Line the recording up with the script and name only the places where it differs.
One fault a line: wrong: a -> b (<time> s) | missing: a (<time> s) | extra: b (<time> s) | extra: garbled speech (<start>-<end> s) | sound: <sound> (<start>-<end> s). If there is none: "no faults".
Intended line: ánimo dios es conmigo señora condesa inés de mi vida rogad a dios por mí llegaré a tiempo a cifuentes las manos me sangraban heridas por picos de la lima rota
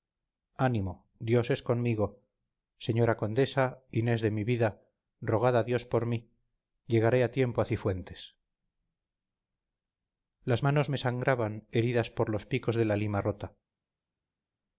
extra: los (12.3 s)